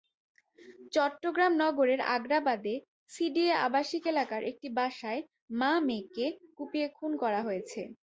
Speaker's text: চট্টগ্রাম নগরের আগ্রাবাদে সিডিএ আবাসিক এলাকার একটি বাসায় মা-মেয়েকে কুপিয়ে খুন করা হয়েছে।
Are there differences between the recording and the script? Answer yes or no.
no